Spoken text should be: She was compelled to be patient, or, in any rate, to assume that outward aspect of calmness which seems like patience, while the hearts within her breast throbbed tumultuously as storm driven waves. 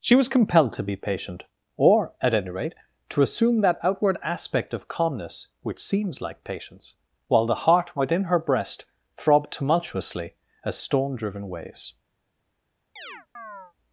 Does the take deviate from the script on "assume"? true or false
false